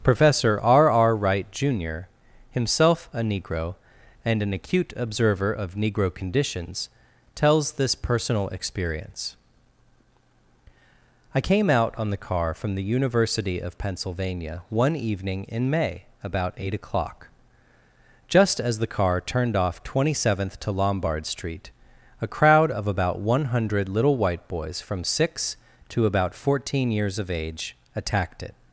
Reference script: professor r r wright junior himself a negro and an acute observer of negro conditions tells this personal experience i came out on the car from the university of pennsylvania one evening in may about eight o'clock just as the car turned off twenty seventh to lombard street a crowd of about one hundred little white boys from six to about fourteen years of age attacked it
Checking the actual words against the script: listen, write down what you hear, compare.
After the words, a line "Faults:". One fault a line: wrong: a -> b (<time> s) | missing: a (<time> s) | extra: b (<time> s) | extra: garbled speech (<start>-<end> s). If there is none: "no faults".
professor r r wright junior himself a negro and an acute observer of negro conditions tells this personal experience i came out on the car from the university of pennsylvania one evening in may about eight o'clock just as the car turned off twenty seventh to lombard street a crowd of about one hundred little white boys from six to about fourteen years of age attacked it
Faults:
no faults